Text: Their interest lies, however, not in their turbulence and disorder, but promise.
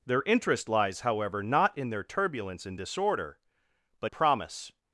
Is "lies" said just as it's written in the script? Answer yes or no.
yes